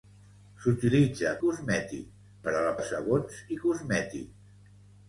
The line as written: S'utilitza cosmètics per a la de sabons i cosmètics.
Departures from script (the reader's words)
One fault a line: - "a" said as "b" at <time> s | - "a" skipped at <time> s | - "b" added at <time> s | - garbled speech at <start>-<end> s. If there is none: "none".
none